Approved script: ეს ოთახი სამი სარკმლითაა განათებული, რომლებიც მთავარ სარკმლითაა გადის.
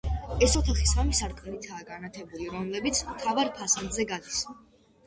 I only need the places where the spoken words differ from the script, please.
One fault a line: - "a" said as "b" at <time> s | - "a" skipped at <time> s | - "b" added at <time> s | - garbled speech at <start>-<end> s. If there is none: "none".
- "სარკმლითაა" said as "ფასადზე" at 3.6 s